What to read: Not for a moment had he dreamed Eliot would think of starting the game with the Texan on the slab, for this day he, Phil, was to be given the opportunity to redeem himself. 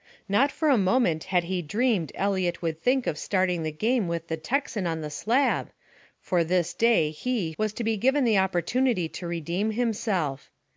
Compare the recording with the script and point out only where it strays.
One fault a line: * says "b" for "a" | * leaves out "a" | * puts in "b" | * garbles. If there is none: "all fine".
* leaves out "Phil"